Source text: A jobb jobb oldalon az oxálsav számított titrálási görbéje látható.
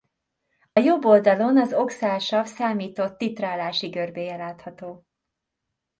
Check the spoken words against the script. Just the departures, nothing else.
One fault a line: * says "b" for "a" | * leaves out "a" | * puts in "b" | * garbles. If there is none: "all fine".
* leaves out "jobb"